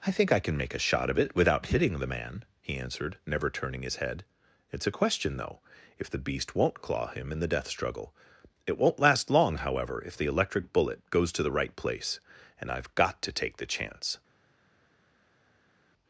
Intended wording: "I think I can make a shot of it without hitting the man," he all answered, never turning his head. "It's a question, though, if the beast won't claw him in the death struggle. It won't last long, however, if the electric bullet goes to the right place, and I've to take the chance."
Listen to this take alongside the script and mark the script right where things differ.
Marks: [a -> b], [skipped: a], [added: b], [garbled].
"I think I can make a shot of it without hitting the man," he [skipped: all] answered, never turning his head. "It's a question, though, if the beast won't claw him in the death struggle. It won't last long, however, if the electric bullet goes to the right place, and I've [added: got] to take the chance."